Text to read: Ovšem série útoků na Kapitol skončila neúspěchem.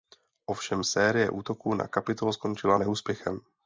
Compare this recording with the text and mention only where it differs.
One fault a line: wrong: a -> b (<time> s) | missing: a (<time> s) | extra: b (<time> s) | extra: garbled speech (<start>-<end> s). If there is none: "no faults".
no faults